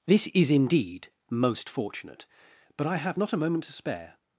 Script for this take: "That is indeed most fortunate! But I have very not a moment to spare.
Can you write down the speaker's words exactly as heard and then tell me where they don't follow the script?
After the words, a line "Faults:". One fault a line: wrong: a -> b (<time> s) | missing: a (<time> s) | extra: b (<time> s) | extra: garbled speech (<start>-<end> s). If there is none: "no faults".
"This is indeed most fortunate! But I have not a moment to spare.
Faults:
wrong: That -> This (0.1 s)
missing: very (3.2 s)